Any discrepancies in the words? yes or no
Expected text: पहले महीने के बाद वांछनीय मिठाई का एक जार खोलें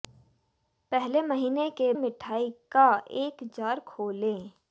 yes